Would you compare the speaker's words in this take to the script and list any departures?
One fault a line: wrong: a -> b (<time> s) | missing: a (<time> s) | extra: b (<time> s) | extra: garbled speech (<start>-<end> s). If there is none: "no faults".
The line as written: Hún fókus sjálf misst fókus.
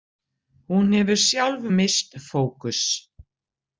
wrong: fókus -> hefur (1.0 s)